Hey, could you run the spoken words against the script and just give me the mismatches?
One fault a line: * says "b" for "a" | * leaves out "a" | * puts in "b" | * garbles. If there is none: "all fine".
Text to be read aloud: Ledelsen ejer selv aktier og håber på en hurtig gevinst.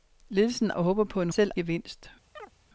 * leaves out "ejer selv aktier"
* says "selv" for "hurtig"